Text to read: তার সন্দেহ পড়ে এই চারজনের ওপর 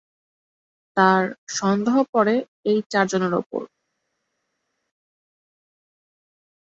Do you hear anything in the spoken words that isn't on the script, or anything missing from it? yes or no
no